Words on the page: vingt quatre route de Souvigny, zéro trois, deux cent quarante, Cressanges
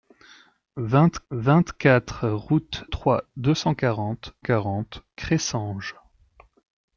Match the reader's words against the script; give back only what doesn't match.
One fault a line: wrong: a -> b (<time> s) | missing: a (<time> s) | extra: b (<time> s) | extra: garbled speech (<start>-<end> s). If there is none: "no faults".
extra: vingt (1.3 s)
missing: de Souvigny zéro (2.8 s)
extra: quarante (4.4 s)